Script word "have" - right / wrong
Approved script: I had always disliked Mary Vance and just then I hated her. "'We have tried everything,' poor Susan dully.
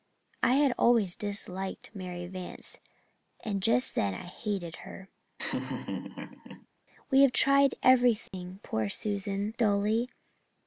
right